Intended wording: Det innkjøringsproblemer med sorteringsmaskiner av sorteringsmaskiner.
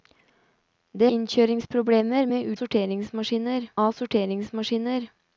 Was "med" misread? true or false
false